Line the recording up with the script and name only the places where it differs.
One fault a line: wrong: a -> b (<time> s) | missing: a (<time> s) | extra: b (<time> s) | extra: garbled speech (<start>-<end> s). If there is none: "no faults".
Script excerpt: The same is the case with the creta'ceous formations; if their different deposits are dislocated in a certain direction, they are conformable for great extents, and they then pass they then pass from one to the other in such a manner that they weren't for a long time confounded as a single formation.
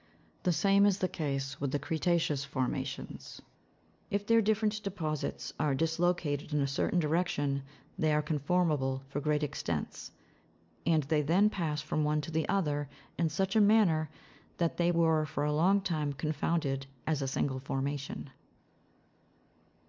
missing: they then pass (11.8 s)
wrong: weren't -> were (14.9 s)